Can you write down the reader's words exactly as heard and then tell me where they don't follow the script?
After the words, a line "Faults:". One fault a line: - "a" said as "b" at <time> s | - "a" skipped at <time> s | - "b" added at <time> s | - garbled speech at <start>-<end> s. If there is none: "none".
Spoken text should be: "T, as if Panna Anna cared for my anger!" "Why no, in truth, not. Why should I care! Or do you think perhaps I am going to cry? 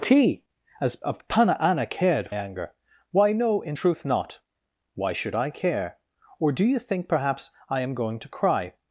"T, as if Panna Anna cared anger!" "Why no, in truth, not. Why should I care! Or do you think perhaps I am going to cry?
Faults:
- "for my" skipped at 2.3 s